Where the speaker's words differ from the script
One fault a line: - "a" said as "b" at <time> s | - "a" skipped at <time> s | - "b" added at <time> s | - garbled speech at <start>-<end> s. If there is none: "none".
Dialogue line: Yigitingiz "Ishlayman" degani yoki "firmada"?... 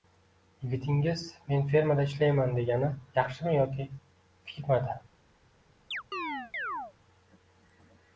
- "Men fermada" added at 1.5 s
- "yaxshimi" added at 3.2 s